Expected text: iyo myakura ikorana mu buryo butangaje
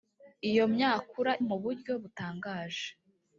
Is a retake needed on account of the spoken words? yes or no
yes